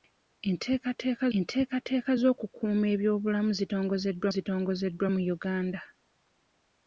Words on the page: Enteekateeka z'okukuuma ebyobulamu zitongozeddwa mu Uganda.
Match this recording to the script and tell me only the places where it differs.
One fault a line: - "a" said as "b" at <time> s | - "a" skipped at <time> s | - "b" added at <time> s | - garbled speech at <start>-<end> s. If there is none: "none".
- "enteekateeka" added at 1.4 s
- "zitongozeddwa" added at 4.3 s